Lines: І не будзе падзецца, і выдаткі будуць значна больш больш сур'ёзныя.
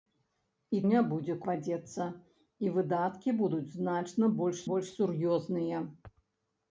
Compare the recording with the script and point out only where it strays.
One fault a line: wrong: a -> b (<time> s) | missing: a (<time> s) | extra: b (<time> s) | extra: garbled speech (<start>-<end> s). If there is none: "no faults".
no faults